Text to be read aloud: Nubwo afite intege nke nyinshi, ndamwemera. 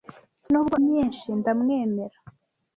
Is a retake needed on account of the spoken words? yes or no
yes